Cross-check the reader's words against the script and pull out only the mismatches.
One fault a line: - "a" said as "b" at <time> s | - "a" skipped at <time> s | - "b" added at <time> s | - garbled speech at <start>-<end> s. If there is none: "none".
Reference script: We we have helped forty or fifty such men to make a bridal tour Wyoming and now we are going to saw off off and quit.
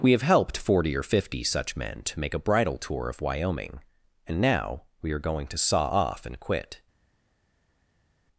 - "we" skipped at 0.1 s
- "of" added at 3.1 s
- "off" skipped at 6.2 s